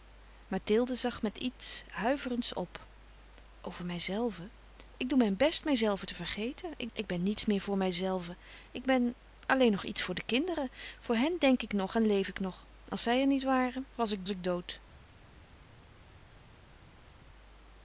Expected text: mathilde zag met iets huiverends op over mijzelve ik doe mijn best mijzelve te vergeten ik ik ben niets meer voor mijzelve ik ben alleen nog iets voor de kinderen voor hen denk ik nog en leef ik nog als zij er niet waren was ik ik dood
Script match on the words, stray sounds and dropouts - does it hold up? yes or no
yes